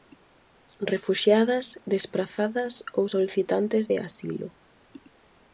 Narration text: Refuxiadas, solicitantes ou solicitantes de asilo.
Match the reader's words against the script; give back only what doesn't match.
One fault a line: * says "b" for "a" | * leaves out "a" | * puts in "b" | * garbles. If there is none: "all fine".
* says "desprazadas" for "solicitantes"